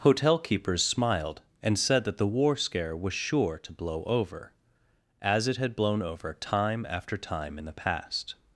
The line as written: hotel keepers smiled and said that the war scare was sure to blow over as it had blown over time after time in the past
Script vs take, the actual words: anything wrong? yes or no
no